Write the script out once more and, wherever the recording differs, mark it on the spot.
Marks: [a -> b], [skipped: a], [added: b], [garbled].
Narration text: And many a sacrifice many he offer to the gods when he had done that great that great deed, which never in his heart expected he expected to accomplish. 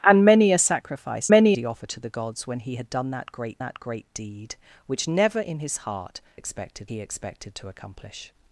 And many a sacrifice many he offer to the gods when he had done that great that great deed, which never in his heart expected he expected to accomplish.